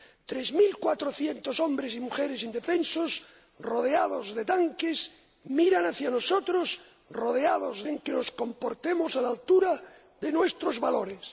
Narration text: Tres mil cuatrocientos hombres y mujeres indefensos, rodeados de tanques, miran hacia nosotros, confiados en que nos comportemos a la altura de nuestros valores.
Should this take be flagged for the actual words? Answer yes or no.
yes